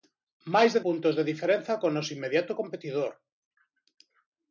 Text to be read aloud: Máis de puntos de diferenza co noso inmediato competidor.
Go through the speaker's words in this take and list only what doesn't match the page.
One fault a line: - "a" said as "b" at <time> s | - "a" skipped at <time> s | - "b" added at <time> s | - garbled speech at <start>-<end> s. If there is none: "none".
none